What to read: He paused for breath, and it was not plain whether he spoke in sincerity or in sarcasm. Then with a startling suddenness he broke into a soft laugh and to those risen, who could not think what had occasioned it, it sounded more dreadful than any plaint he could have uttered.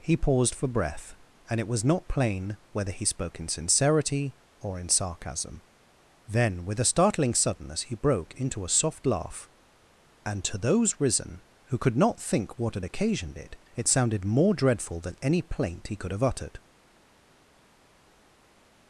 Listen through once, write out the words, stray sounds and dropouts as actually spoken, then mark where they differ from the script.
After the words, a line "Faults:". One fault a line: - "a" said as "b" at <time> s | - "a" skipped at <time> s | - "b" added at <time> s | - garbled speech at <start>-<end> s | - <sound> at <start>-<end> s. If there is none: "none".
He paused for breath, and it was not plain whether he spoke in sincerity or in sarcasm. Then with a startling suddenness he broke into a soft laugh and to those risen, who could not think what had occasioned it, it sounded more dreadful than any plaint he could have uttered.
Faults:
none